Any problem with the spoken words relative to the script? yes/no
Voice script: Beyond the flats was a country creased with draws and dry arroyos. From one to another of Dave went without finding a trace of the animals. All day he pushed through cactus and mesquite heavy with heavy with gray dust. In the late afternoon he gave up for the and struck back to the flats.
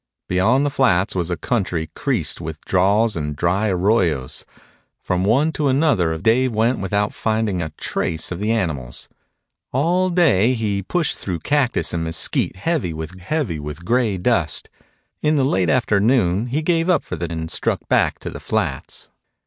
no